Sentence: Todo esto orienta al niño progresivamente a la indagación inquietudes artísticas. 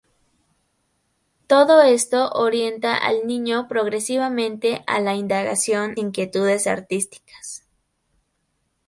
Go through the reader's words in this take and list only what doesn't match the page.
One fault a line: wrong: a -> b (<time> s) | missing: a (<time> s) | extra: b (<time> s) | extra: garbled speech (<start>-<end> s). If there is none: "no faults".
no faults